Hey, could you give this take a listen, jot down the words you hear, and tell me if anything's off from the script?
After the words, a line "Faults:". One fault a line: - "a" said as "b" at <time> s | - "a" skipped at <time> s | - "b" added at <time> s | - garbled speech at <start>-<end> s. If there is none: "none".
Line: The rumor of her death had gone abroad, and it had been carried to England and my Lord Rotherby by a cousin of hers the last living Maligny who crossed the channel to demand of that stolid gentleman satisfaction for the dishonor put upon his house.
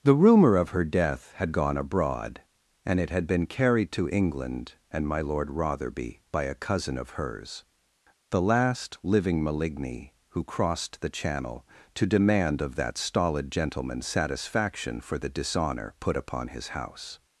The rumor of her death had gone abroad, and it had been carried to England and my Lord Rotherby by a cousin of hers the last living Maligny who crossed the channel to demand of that stolid gentleman satisfaction for the dishonor put upon his house.
Faults:
none